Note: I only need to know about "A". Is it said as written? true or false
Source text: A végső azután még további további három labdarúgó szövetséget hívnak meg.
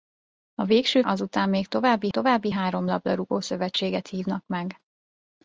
true